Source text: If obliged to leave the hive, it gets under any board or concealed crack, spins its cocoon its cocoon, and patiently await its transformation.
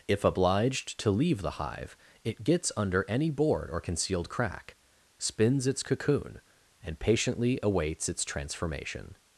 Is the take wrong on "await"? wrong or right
wrong